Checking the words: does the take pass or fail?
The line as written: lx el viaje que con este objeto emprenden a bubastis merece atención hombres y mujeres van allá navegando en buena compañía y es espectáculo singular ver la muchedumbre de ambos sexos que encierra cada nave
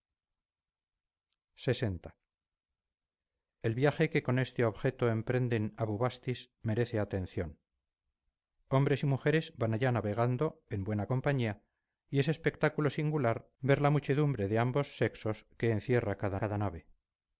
fail